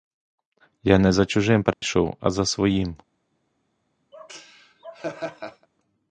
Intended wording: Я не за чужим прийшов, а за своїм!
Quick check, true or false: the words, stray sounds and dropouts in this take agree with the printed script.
false